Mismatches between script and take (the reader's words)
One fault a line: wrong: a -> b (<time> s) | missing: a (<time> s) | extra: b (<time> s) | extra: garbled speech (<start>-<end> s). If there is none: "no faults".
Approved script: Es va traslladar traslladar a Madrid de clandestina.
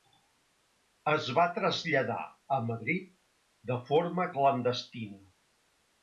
missing: traslladar (2.2 s)
extra: forma (3.9 s)